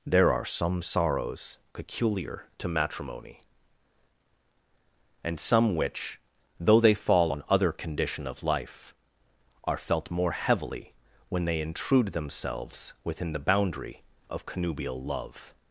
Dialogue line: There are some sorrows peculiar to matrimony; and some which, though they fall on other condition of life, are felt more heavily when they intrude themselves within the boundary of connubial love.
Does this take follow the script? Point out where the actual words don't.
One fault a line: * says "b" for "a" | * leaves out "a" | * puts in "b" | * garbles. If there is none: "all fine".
all fine